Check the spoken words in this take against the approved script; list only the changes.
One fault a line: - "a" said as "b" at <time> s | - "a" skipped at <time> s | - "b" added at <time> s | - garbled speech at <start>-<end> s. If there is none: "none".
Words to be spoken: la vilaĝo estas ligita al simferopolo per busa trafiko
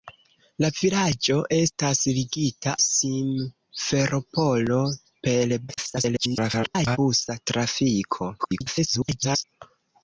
- "al" skipped at 2.7 s
- garbled speech at 5.7-7.0 s
- garbled speech at 8.4-9.4 s